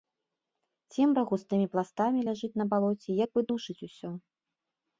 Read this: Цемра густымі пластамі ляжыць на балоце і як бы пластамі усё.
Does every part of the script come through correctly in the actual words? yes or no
no